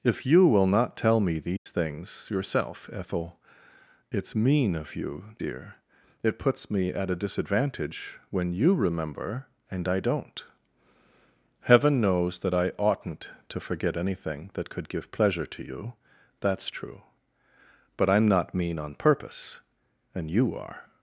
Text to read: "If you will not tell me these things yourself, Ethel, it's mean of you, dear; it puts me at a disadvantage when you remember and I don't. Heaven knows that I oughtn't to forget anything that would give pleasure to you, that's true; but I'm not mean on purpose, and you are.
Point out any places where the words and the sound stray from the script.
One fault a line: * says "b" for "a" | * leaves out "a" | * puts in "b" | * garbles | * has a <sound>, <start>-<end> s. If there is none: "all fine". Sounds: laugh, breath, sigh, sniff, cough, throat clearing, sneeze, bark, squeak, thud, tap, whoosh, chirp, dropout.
* has a dropout, 1.6-1.7 s
* says "could" for "would"